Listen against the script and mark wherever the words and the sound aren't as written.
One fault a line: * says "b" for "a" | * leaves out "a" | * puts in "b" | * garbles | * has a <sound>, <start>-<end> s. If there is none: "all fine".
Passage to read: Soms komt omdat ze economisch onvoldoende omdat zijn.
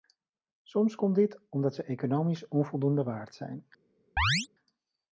* puts in "dit"
* says "waard" for "omdat"
* has a chirp, 4.2-4.5 s